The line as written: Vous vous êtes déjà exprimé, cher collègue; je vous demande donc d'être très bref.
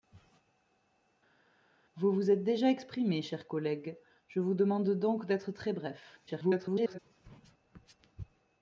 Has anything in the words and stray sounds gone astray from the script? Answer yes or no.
yes